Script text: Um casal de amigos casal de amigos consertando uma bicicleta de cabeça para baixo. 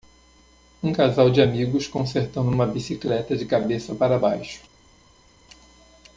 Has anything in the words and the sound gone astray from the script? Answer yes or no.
yes